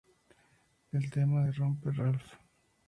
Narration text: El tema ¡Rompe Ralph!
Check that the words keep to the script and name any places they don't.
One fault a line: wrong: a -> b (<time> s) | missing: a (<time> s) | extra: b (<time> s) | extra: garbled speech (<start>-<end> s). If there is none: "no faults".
extra: de (1.4 s)